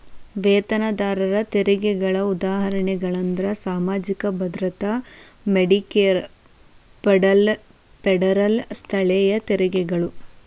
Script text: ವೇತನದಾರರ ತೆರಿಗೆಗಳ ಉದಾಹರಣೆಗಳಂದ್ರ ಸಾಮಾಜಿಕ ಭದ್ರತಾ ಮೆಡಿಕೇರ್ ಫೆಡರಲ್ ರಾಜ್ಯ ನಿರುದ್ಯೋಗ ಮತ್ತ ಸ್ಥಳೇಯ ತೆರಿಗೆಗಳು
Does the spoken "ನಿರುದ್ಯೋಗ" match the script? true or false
false